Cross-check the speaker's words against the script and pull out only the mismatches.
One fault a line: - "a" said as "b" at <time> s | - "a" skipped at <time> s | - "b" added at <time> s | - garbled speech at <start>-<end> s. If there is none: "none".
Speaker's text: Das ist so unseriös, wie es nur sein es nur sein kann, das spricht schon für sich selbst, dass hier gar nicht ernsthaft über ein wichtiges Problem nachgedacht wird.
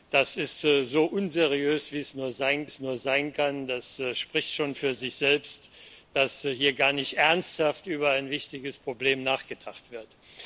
none